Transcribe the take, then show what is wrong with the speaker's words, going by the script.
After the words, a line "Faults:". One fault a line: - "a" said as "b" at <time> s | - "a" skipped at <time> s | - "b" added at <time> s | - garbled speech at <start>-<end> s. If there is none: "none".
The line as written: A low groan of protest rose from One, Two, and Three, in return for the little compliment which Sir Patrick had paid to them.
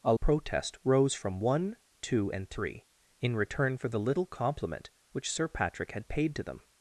A protest rose from One, Two, and Three, in return for the little compliment which Sir Patrick had paid to them.
Faults:
- "low groan of" skipped at 0.1 s